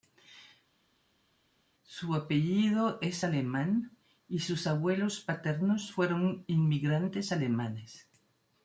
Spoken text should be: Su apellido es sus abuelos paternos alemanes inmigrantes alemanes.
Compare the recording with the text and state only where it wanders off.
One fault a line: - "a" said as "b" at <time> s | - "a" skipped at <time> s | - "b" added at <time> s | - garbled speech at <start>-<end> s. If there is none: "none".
- "alemán y" added at 3.2 s
- "alemanes" said as "fueron" at 5.9 s